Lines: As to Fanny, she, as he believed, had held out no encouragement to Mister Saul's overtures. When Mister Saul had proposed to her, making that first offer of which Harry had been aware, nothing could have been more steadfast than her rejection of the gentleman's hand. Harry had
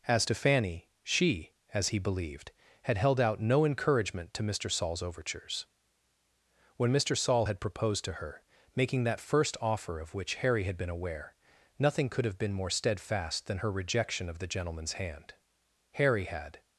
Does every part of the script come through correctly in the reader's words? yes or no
yes